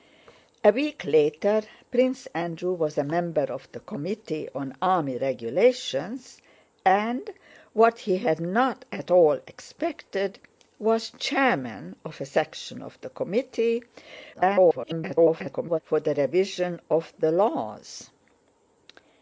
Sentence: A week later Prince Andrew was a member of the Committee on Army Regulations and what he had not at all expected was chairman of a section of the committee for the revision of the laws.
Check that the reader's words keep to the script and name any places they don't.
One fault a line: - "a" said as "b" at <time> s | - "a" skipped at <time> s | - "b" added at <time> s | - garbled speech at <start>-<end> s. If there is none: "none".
- garbled speech at 14.3-15.8 s